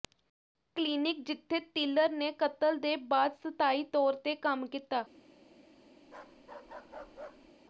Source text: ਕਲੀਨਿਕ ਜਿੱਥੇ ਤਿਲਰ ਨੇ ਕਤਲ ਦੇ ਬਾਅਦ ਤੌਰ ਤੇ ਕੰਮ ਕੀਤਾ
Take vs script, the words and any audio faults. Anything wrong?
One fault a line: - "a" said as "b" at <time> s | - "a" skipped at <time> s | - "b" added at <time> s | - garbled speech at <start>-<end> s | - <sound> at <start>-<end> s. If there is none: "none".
- "ਸਥਾਈ" added at 3.4 s
- bark at 6.0-7.5 s